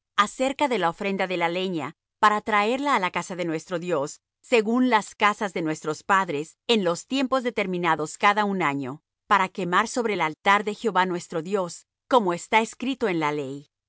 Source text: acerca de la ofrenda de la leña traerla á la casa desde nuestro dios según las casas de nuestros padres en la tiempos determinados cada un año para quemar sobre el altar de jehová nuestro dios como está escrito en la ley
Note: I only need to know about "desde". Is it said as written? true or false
false